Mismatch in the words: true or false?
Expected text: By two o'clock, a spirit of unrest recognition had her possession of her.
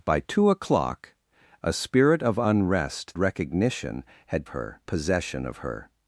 false